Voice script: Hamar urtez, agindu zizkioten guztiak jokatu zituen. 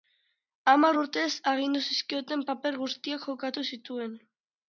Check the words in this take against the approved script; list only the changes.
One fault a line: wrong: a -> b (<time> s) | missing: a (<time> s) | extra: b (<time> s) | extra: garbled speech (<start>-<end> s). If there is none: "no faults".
extra: paper (2.5 s)